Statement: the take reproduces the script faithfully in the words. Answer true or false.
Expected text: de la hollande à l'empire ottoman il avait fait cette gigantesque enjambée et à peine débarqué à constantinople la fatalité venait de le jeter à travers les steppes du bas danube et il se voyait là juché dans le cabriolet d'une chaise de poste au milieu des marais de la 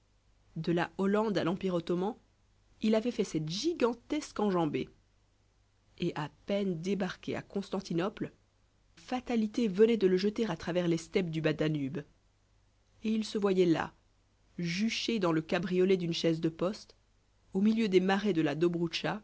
false